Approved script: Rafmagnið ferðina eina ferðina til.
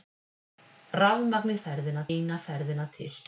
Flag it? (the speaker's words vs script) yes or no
no